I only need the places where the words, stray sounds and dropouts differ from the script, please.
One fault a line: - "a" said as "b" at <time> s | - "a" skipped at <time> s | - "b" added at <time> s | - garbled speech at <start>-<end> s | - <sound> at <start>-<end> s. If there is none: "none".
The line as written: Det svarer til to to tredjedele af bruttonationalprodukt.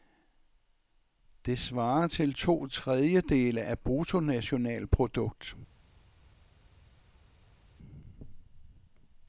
- "to" skipped at 2.7 s